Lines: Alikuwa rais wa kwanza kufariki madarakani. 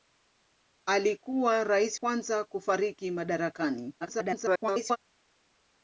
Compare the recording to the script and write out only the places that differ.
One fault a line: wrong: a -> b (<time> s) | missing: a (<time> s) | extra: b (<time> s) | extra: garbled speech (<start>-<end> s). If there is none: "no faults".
missing: wa (2.0 s)
extra: garbled speech (4.0-5.0 s)